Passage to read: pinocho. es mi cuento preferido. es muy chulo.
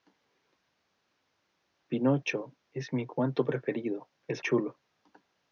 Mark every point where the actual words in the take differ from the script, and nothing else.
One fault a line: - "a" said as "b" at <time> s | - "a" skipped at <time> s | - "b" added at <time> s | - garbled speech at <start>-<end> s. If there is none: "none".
- "muy" skipped at 4.4 s